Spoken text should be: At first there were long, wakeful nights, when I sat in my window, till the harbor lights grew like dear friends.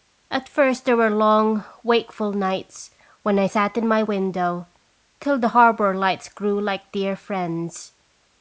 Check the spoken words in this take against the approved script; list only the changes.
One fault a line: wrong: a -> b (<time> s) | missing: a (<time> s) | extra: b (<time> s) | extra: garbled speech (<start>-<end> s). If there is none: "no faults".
no faults